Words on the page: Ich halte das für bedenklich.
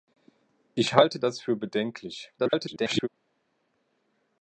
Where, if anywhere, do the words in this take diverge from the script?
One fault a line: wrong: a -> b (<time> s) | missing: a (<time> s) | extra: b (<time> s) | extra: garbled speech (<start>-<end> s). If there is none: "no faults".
extra: garbled speech (2.4-3.1 s)